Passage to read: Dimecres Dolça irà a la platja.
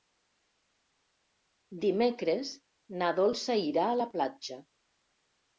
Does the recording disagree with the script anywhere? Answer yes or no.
yes